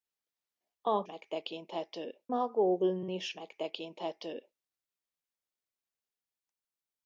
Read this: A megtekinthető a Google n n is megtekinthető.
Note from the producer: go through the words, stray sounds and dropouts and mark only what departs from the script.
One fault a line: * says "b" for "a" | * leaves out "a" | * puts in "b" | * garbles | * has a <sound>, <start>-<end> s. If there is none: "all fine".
all fine